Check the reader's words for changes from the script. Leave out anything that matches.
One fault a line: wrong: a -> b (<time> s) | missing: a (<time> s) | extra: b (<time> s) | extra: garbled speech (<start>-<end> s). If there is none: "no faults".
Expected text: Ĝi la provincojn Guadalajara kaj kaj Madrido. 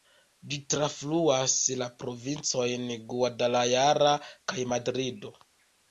extra: trafluas (0.7 s)
missing: kaj (4.7 s)